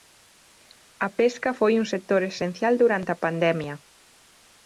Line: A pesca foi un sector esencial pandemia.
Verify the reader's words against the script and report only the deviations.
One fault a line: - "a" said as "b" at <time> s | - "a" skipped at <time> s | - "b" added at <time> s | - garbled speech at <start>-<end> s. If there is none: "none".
- "durante a" added at 2.8 s